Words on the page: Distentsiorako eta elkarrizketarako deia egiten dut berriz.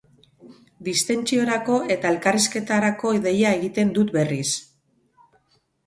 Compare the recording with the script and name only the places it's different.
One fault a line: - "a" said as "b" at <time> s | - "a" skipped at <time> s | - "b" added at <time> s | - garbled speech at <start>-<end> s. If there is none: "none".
none